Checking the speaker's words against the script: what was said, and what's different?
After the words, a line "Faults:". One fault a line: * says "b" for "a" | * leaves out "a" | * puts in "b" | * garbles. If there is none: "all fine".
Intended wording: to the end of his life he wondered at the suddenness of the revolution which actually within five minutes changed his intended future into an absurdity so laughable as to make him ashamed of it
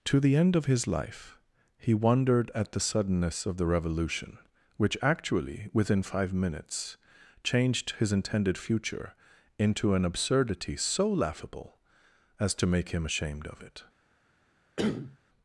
to the end of his life he wondered at the suddenness of the revolution which actually within five minutes changed his intended future into an absurdity so laughable as to make him ashamed of it
Faults:
all fine